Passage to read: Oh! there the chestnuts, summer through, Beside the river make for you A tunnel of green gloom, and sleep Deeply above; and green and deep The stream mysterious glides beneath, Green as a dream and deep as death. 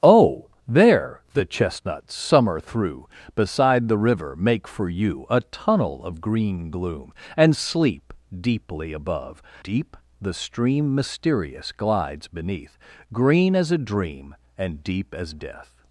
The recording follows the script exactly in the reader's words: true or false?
false